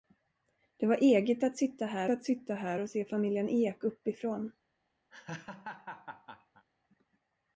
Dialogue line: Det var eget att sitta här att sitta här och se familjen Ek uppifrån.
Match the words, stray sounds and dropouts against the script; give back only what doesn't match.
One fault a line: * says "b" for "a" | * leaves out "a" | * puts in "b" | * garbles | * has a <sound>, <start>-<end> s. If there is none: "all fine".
* has a laugh, 5.1-6.6 s